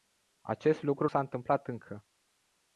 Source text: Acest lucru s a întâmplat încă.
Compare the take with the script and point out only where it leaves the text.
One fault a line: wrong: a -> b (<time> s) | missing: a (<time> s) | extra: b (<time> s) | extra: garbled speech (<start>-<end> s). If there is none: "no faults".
no faults